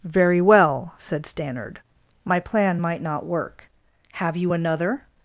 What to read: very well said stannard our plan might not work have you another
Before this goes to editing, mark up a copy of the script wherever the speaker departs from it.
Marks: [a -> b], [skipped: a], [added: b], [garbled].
very well said stannard [our -> my] plan might not work have you another